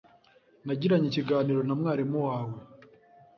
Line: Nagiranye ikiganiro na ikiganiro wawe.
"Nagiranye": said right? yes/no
yes